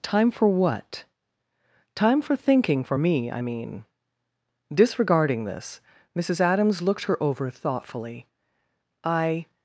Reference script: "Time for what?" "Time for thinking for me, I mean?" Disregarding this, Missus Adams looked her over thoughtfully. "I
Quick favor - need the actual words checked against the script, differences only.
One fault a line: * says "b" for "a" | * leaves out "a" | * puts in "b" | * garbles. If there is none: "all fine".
all fine